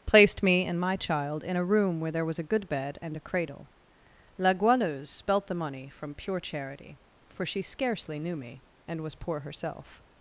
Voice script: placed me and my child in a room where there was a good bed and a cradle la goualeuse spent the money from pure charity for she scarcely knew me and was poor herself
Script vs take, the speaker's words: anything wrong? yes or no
yes